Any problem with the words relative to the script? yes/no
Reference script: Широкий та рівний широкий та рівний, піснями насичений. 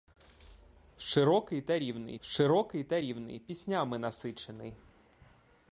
no